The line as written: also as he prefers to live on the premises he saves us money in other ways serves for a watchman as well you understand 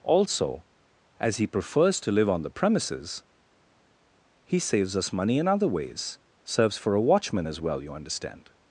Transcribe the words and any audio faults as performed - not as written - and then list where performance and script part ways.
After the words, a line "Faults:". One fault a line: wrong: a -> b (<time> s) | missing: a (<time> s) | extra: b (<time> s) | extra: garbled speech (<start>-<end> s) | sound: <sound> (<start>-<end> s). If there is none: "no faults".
also as he prefers to live on the premises he saves us money in other ways serves for a watchman as well you understand
Faults:
no faults